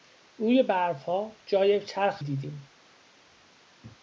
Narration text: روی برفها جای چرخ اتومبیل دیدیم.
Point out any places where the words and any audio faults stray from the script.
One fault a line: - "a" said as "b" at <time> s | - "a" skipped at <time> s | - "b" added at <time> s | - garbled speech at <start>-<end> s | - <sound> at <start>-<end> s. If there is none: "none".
- "اتومبیل" skipped at 2.2 s